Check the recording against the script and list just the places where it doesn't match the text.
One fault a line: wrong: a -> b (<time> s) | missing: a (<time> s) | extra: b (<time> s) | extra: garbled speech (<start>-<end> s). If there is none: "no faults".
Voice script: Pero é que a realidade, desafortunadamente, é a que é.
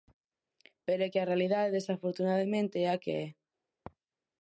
no faults